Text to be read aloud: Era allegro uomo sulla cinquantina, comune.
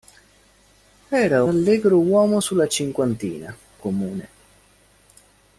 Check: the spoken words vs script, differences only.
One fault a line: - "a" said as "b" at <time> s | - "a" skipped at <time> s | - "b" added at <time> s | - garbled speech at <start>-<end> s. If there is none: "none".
none